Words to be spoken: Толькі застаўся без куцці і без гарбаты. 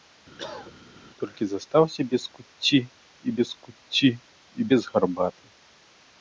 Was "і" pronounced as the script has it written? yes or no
yes